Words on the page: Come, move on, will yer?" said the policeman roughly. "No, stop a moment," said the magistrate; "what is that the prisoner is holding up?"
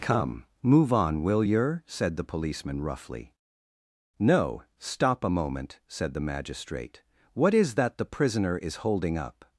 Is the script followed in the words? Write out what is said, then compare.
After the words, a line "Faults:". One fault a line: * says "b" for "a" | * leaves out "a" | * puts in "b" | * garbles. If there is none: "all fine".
Come, move on, will yer?" said the policeman roughly. "No, stop a moment," said the magistrate; "what is that the prisoner is holding up?"
Faults:
all fine